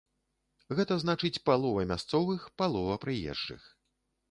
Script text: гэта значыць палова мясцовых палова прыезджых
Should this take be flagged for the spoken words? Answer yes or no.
no